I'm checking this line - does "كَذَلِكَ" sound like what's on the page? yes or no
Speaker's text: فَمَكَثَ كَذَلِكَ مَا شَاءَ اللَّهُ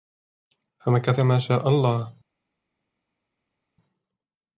no